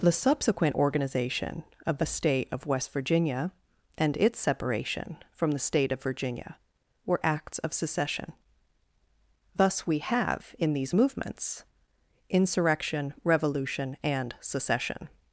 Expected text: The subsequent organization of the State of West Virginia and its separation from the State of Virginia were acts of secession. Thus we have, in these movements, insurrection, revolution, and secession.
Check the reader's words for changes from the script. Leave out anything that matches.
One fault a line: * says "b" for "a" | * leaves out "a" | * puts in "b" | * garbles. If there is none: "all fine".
all fine